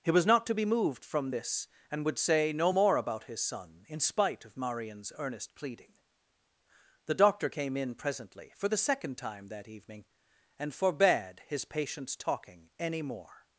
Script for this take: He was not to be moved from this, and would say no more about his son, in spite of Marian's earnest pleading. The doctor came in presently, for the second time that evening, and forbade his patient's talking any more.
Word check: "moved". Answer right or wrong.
right